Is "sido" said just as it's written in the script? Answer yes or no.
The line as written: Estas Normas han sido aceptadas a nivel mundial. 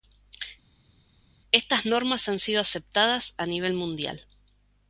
yes